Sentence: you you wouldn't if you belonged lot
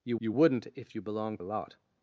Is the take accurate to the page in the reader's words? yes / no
yes